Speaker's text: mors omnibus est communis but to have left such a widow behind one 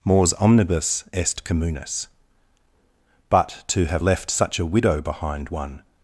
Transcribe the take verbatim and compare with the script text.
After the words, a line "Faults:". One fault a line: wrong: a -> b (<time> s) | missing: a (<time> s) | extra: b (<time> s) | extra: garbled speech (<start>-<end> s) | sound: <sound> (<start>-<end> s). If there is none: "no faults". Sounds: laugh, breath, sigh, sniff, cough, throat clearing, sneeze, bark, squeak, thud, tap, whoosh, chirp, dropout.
mors omnibus est communis but to have left such a widow behind one
Faults:
no faults